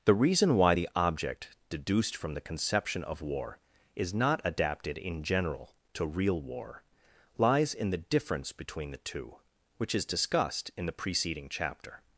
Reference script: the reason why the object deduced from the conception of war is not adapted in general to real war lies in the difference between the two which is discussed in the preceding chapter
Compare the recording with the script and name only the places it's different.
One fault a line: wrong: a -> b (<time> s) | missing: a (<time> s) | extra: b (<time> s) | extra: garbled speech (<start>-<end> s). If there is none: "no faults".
no faults